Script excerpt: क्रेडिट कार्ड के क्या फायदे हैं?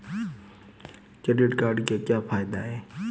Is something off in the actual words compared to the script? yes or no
no